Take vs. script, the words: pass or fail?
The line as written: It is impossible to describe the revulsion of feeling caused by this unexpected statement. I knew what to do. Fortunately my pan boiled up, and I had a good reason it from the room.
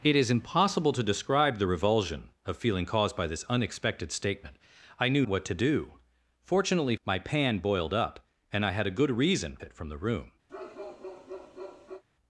pass